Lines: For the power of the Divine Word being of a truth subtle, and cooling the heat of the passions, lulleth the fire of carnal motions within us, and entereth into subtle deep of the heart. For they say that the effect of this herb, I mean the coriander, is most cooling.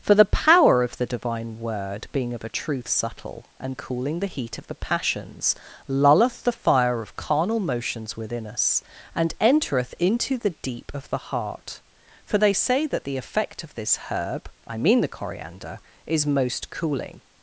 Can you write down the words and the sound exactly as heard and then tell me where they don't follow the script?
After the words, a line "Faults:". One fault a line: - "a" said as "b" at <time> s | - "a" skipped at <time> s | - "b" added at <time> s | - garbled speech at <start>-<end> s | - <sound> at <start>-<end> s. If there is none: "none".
For the power of the Divine Word being of a truth subtle, and cooling the heat of the passions, lulleth the fire of carnal motions within us, and entereth into the deep of the heart. For they say that the effect of this herb, I mean the coriander, is most cooling.
Faults:
- "subtle" said as "the" at 10.4 s